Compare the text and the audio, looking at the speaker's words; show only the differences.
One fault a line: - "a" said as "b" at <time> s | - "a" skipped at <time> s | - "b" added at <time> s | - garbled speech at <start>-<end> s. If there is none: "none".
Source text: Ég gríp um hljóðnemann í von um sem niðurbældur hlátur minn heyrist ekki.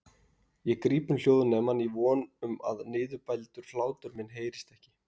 - "sem" said as "að" at 2.7 s